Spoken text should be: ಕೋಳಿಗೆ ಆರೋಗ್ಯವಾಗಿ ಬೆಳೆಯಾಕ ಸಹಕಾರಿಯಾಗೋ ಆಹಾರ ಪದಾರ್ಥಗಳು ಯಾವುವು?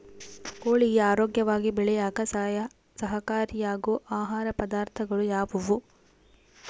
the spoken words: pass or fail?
pass